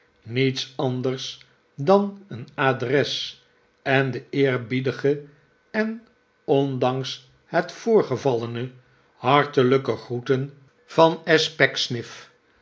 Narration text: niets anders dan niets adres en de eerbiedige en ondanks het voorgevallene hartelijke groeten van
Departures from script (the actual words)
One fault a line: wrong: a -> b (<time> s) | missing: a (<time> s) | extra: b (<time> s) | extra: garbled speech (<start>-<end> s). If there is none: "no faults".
wrong: niets -> een (2.3 s)